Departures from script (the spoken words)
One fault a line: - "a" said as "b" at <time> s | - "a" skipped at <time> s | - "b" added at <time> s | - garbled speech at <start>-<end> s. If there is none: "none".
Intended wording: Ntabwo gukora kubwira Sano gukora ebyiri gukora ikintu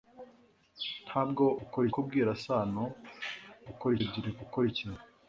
none